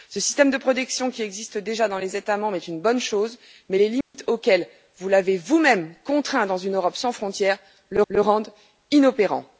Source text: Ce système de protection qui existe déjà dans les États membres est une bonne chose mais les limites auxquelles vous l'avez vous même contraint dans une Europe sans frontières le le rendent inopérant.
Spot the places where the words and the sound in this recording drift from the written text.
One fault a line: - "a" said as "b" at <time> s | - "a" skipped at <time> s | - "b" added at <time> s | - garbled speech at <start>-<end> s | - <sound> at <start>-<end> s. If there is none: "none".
- dropout at 4.0-4.1 s